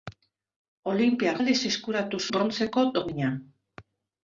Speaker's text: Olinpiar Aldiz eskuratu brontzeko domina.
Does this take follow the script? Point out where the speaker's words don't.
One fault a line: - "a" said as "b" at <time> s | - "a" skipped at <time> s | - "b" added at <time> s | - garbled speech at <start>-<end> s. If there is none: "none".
none